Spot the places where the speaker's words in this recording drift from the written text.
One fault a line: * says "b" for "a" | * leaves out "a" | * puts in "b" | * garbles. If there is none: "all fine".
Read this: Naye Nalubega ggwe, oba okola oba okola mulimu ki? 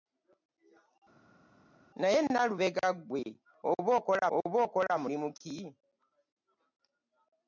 all fine